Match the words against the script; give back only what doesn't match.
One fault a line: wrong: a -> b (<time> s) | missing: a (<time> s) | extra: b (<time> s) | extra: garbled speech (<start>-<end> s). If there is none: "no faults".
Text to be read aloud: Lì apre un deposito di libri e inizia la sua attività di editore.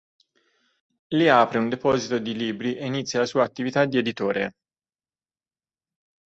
no faults